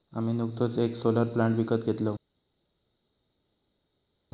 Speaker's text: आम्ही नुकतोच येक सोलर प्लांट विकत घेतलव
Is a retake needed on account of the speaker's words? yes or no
no